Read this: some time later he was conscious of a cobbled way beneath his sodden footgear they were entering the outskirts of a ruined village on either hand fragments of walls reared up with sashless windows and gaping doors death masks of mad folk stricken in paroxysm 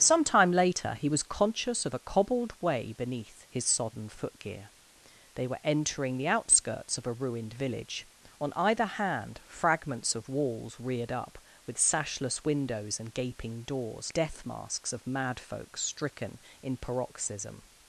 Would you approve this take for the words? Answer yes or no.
yes